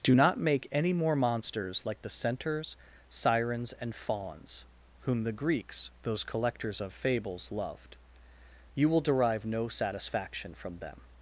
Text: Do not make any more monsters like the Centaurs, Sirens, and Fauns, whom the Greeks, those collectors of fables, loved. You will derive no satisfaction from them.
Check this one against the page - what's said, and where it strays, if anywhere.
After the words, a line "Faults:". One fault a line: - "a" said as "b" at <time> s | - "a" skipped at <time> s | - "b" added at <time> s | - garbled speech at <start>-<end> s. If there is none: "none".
Do not make any more monsters like the Centaurs, Sirens, and Fauns, whom the Greeks, those collectors of fables, loved. You will derive no satisfaction from them.
Faults:
none